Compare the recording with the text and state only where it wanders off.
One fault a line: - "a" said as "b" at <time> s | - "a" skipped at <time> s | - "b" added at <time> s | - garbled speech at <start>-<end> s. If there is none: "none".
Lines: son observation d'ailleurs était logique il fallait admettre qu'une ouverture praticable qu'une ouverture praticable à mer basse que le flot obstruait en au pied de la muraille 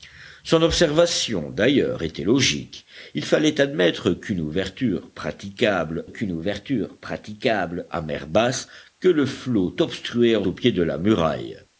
none